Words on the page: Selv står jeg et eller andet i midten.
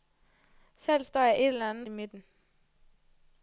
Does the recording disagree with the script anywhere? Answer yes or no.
no